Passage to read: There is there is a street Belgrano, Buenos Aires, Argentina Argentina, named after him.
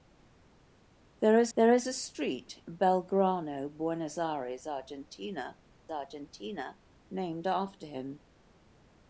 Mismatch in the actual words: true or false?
false